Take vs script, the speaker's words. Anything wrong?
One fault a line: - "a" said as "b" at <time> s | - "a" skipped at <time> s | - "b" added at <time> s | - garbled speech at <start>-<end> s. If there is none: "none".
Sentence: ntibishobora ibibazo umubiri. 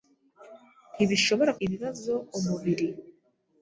none